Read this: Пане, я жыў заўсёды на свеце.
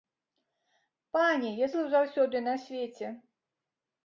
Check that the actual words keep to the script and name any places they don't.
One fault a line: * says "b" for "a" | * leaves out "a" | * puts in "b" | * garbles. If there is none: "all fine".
all fine